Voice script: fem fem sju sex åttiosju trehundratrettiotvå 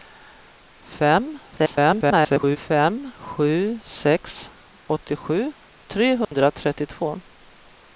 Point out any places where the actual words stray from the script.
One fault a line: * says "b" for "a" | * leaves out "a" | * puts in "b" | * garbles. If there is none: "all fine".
* garbles